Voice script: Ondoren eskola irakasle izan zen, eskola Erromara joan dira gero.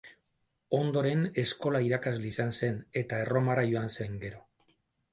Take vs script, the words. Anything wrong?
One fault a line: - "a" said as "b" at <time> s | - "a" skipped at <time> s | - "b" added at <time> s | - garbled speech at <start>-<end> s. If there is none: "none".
- "eskola" said as "eta" at 3.0 s
- "dira" said as "zen" at 4.0 s